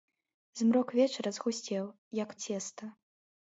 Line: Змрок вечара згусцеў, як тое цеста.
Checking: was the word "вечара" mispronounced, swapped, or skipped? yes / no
no